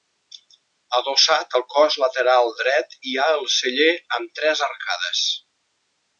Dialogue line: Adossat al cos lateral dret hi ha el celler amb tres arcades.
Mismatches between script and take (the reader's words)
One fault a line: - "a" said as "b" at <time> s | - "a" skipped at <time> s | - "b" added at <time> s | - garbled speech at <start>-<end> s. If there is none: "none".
none